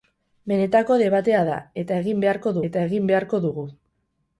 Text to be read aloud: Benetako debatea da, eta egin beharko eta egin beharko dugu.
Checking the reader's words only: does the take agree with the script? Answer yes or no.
yes